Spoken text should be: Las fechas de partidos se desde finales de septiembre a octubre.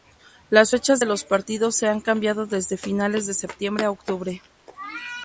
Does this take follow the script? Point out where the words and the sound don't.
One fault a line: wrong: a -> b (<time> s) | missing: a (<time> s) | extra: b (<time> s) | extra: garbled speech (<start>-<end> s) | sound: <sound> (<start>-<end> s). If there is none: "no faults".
extra: los (1.0 s)
extra: han cambiado (1.9 s)